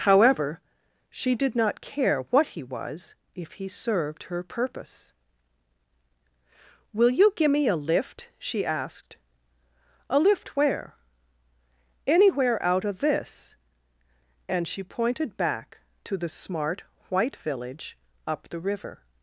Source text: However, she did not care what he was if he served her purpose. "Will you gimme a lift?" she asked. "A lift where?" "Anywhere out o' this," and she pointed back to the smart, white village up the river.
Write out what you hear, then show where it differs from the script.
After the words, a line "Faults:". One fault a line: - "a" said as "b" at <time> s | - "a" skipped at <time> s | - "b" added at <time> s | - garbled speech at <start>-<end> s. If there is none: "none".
However, she did not care what he was if he served her purpose. "Will you gimme a lift?" she asked. "A lift where?" "Anywhere out o' this," and she pointed back to the smart, white village up the river.
Faults:
none